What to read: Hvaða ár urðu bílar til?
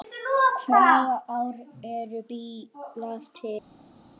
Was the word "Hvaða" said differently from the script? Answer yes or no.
no